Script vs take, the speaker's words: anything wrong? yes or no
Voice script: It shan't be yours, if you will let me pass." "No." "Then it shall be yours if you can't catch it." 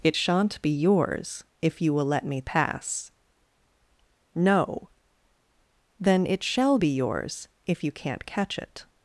no